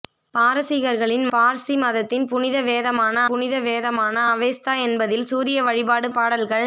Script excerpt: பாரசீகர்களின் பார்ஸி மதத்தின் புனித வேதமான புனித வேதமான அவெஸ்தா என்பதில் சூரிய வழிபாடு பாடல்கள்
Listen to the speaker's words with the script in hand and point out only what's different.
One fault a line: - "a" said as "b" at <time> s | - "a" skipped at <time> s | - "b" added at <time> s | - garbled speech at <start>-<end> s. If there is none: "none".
none